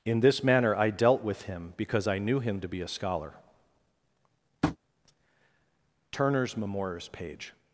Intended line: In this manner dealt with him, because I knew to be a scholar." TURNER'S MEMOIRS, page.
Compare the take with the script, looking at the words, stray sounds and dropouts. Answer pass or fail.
fail